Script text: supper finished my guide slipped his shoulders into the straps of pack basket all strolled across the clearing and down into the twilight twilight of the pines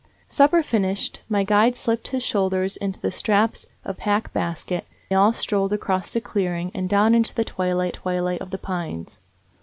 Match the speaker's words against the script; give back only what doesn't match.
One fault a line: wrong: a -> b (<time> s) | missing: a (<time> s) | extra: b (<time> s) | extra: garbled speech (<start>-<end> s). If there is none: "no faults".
no faults